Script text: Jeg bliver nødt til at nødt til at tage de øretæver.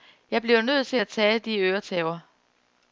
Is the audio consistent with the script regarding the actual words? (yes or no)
no